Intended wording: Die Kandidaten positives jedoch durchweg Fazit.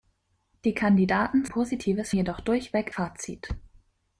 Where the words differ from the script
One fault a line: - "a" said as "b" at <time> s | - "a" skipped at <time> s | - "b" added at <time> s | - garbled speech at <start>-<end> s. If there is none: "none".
none